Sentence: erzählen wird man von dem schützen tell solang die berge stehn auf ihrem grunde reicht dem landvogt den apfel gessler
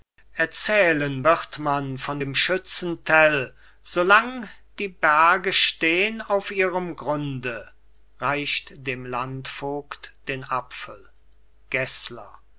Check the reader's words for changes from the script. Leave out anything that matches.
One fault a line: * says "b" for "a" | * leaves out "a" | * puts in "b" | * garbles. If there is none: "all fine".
all fine